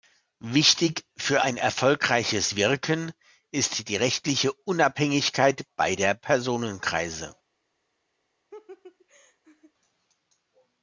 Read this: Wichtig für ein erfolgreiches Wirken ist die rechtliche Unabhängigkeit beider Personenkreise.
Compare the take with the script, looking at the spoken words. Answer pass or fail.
pass